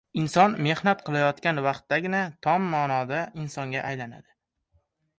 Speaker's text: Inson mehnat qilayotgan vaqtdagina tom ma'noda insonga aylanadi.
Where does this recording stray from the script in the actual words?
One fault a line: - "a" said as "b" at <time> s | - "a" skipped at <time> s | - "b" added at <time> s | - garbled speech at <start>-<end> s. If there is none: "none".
none